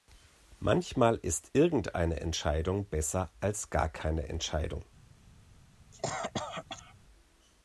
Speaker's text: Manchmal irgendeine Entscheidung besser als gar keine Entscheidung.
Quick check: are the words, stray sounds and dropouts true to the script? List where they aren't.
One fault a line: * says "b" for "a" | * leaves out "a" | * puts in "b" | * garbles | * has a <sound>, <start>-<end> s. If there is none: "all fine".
* puts in "ist"
* has a cough, 5.9-6.9 s